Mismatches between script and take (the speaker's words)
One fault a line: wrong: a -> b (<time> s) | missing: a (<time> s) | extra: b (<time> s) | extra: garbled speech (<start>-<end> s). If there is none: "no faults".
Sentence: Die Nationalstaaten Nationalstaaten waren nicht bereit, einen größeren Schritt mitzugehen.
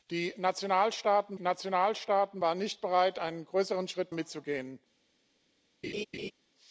no faults